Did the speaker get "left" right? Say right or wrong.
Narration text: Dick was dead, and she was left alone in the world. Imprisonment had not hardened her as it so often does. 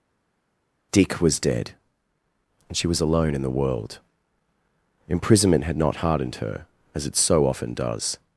wrong